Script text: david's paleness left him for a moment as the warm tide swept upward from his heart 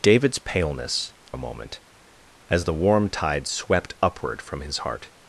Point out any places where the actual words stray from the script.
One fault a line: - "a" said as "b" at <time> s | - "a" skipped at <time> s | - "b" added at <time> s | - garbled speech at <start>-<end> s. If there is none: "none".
- "left him for" skipped at 1.1 s